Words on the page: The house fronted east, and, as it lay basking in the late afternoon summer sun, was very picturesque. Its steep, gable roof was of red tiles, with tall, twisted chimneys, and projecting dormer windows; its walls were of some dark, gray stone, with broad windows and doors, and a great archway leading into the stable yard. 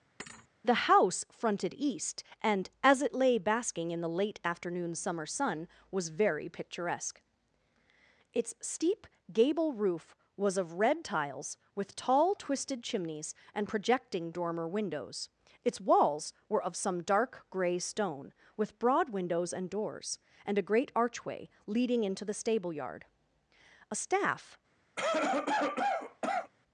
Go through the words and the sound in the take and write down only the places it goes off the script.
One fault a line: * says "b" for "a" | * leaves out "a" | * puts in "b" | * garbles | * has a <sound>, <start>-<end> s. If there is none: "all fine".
* has a thud, 0.2-0.5 s
* puts in "A staff"
* has a cough, 25.0-26.5 s